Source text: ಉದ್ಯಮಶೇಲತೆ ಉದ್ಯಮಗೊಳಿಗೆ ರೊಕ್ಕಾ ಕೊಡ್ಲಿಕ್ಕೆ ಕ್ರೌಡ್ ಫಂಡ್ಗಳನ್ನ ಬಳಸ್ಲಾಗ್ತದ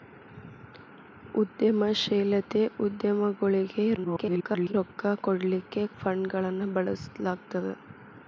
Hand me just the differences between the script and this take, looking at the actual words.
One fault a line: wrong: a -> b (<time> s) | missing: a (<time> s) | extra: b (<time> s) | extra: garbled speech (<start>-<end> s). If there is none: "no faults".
extra: garbled speech (4.0-4.7 s)
missing: ಕ್ರೌಡ್ (5.8 s)